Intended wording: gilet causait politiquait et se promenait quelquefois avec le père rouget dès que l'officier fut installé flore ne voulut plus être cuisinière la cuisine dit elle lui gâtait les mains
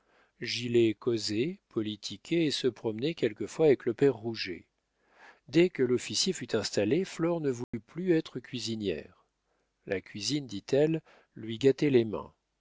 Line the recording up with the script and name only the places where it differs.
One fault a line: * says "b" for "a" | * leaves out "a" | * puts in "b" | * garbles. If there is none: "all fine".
all fine